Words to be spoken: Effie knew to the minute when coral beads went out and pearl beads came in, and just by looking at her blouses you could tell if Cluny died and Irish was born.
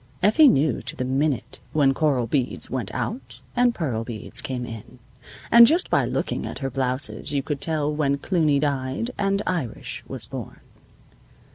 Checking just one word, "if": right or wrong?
wrong